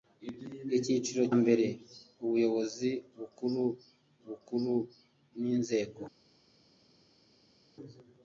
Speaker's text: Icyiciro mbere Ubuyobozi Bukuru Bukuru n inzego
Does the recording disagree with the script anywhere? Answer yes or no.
no